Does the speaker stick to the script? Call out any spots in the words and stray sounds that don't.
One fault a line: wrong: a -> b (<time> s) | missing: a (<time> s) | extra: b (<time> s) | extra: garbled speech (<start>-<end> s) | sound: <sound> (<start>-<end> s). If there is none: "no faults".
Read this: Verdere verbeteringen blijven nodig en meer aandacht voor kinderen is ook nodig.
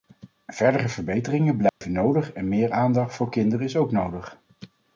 sound: dropout (1.7-1.8 s)